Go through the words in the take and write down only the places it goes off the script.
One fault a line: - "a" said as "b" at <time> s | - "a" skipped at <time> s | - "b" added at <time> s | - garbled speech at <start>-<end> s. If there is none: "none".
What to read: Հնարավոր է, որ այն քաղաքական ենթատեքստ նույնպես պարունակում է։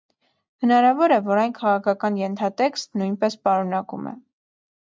none